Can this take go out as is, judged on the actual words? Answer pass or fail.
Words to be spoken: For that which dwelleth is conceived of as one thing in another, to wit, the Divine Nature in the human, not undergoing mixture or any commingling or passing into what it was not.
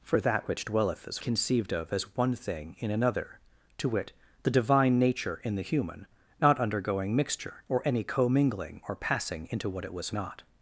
pass